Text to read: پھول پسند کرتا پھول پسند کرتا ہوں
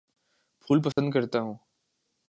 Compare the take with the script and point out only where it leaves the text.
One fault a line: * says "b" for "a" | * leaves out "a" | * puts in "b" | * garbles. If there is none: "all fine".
* leaves out "پھول پسند کرتا"